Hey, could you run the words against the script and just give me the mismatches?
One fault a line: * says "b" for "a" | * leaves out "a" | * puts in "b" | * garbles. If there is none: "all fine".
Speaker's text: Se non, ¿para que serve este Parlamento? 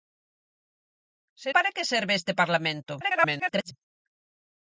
* leaves out "non"
* garbles